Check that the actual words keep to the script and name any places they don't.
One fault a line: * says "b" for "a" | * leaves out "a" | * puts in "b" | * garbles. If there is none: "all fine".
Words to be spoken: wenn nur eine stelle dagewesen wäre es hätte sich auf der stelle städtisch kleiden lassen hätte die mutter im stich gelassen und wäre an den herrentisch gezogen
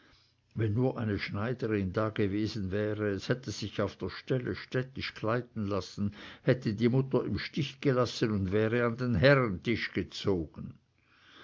* says "schneiderin" for "stelle"